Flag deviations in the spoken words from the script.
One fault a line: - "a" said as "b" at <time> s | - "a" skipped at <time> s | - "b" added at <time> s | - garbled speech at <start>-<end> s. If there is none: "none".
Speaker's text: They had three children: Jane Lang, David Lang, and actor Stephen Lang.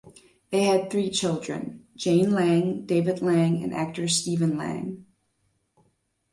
none